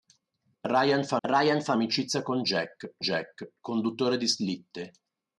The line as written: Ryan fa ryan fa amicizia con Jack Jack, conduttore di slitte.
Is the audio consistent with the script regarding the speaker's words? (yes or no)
yes